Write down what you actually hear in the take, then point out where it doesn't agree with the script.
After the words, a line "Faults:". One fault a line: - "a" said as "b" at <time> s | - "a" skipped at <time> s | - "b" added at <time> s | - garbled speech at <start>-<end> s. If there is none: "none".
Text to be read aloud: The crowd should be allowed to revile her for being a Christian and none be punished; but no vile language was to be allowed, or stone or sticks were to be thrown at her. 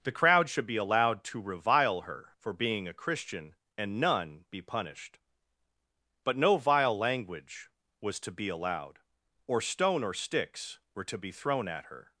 The crowd should be allowed to revile her for being a Christian and none be punished; but no vile language was to be allowed, or stone or sticks were to be thrown at her.
Faults:
none